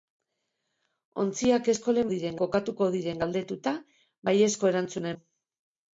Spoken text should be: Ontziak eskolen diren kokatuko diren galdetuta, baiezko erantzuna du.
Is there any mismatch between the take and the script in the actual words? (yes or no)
no